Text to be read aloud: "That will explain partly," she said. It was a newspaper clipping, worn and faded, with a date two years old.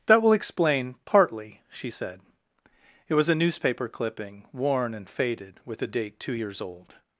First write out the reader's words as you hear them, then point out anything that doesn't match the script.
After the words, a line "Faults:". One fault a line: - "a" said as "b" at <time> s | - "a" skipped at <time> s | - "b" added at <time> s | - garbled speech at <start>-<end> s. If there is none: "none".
"That will explain partly," she said. It was a newspaper clipping, worn and faded, with a date two years old.
Faults:
none